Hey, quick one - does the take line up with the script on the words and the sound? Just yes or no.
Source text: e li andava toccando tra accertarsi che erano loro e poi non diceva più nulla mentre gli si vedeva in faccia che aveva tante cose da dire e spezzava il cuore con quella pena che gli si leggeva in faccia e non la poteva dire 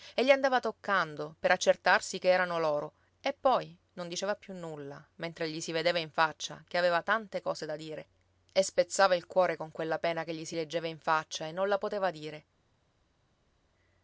no